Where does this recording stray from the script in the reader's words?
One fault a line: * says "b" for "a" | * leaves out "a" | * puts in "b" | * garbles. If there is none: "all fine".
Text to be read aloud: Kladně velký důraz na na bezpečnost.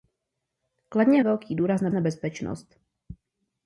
all fine